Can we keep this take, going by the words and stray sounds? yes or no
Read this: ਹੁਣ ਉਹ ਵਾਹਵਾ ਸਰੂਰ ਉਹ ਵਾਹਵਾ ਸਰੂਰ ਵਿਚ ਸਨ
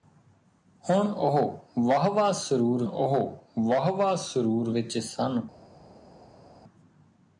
yes